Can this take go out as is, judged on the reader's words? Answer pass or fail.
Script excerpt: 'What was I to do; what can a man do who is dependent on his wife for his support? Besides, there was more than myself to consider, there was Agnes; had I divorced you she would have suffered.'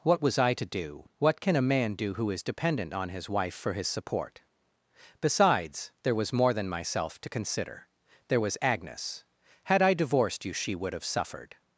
pass